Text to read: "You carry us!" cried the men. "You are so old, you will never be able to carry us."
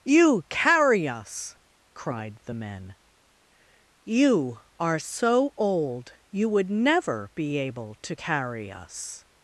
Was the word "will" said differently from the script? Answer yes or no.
yes